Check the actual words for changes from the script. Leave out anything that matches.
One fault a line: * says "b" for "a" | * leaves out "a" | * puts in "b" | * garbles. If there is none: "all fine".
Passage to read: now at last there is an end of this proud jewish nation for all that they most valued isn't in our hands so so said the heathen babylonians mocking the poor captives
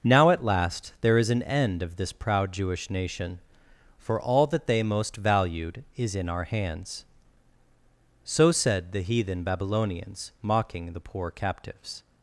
* says "is" for "isn't"
* leaves out "so"